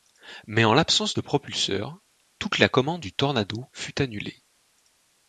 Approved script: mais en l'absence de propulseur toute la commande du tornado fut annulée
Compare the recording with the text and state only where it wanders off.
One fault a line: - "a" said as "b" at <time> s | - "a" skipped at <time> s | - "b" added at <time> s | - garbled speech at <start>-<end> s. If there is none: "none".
none